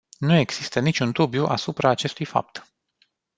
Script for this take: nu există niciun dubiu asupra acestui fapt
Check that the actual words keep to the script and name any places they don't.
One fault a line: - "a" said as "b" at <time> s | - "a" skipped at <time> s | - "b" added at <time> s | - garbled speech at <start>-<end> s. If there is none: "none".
none